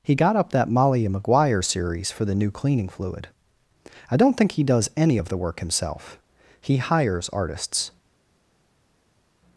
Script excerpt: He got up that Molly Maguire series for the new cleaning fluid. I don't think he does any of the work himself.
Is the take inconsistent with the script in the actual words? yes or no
yes